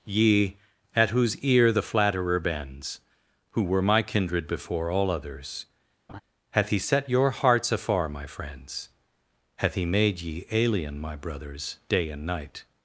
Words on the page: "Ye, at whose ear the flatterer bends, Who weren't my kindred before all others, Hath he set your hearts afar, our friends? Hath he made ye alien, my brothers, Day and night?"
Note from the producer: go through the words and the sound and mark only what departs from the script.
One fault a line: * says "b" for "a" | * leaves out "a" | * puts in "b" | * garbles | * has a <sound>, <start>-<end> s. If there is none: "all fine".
* says "were" for "weren't"
* has a laugh, 6.1-6.2 s
* says "my" for "our"